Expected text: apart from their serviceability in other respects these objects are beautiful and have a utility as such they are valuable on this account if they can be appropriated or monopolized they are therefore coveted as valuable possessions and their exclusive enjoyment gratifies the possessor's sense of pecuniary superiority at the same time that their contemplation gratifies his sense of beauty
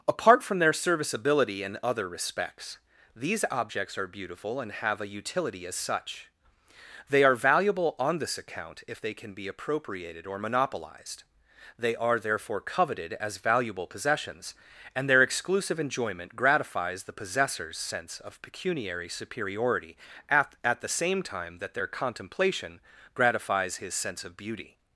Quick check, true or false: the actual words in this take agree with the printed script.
false